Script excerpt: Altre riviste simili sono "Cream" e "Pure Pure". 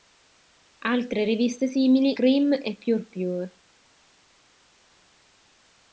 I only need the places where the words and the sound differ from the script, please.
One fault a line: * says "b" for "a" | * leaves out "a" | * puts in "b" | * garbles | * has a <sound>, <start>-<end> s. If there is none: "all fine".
* leaves out "sono"